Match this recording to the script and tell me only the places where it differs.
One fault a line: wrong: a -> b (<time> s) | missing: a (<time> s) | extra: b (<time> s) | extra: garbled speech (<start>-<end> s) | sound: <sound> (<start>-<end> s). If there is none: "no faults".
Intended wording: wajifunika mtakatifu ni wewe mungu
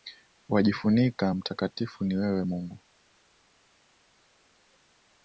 no faults